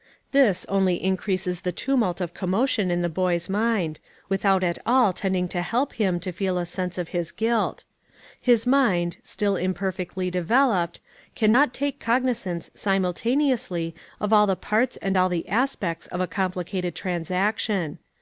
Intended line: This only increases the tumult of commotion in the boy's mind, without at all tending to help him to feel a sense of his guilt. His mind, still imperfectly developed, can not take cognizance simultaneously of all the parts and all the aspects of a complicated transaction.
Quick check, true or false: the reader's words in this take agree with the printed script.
true